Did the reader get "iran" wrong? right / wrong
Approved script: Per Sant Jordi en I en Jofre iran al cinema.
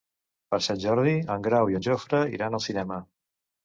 right